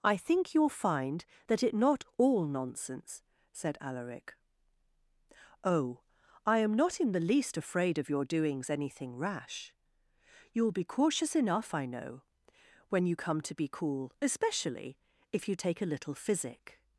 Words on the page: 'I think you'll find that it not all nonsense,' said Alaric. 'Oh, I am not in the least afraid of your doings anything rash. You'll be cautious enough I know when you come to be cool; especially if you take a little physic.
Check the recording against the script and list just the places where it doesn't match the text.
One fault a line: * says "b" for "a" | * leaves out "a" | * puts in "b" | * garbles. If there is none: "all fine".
all fine